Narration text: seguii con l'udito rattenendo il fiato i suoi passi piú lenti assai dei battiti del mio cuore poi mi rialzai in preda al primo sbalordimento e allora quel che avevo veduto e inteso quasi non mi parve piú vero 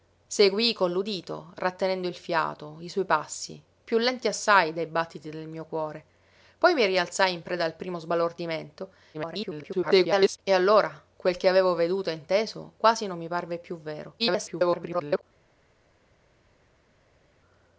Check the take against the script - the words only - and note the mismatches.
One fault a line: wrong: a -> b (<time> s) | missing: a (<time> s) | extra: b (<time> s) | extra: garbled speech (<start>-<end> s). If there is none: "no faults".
extra: garbled speech (9.1-10.4 s)
extra: garbled speech (14.2-15.2 s)